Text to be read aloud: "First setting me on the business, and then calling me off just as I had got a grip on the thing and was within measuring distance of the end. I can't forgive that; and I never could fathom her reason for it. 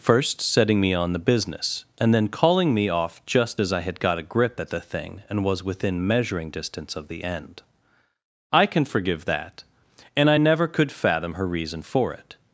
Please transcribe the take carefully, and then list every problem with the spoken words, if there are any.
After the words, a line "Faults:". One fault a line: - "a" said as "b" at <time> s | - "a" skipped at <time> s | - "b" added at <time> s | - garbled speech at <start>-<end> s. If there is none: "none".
"First setting me on the business, and then calling me off just as I had got a grip at the thing and was within measuring distance of the end. I can forgive that; and I never could fathom her reason for it.
Faults:
- "on" said as "at" at 4.6 s
- "can't" said as "can" at 8.6 s